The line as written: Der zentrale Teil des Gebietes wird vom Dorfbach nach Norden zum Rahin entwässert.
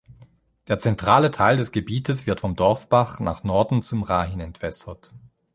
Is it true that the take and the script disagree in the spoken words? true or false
false